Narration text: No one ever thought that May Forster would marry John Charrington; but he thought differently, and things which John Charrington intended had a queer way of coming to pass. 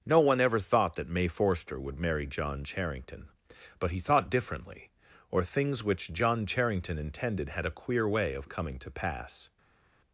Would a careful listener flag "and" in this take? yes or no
yes